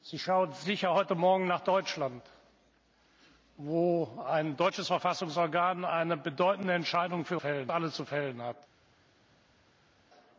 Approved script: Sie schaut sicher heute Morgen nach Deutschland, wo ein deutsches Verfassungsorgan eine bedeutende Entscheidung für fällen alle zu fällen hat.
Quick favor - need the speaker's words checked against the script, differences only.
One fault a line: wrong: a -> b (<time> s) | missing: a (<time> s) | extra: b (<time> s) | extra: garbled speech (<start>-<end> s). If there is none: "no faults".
no faults